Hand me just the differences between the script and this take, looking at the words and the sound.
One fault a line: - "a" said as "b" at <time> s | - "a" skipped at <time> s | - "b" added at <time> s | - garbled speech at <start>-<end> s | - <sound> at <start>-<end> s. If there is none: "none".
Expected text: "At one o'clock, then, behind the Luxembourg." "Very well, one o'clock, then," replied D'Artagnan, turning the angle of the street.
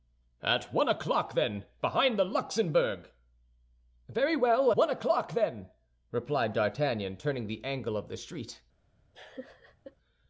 - laugh at 9.1-10.0 s